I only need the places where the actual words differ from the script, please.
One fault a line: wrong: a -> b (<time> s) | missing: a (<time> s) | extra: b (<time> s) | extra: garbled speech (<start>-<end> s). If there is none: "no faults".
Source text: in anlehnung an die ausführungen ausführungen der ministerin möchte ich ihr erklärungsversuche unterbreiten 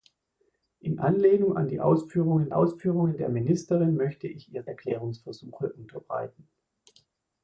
no faults